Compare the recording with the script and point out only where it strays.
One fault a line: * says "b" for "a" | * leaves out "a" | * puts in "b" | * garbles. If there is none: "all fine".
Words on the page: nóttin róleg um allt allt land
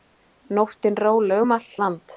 * leaves out "allt"